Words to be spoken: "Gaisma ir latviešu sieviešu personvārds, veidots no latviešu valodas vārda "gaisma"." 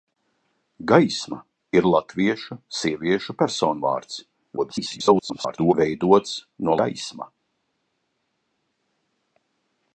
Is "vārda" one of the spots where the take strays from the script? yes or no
yes